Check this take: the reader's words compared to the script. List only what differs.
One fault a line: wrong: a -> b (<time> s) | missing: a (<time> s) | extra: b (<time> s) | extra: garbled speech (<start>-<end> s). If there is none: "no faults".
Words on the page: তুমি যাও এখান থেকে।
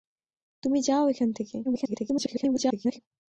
extra: garbled speech (1.6-3.0 s)